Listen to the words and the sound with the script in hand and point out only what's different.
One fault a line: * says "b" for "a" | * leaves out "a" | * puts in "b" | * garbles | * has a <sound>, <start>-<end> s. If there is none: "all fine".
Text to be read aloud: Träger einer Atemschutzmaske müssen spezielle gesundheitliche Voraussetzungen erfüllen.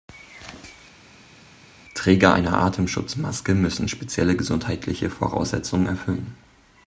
all fine